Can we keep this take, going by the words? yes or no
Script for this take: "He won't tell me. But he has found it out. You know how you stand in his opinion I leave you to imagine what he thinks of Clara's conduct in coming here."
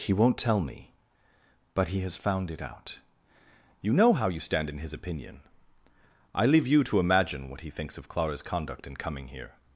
yes